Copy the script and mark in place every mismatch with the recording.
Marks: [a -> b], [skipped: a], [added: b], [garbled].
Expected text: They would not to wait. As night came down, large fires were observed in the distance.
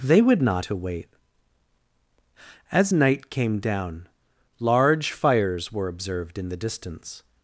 They would not to wait. As night came down, large fires were observed in the distance.